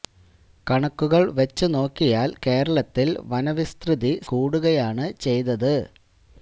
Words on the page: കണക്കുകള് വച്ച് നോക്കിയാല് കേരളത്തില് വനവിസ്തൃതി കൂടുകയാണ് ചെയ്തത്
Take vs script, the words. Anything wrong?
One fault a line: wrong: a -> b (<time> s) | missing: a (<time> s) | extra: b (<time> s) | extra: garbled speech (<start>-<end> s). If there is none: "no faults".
no faults